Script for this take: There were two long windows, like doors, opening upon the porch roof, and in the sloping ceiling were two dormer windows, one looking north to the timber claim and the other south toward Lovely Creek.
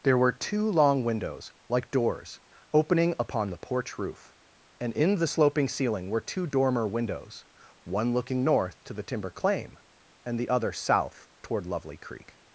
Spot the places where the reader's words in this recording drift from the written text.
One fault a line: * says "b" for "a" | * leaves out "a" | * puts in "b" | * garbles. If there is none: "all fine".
all fine